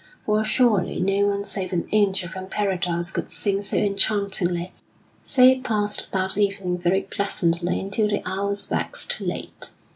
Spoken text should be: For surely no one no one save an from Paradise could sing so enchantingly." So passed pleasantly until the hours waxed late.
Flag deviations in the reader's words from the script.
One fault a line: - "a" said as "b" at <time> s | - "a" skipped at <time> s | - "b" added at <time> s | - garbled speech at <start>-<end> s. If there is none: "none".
- "no one" skipped at 1.4 s
- "angel" added at 1.9 s
- "that evening very" added at 6.1 s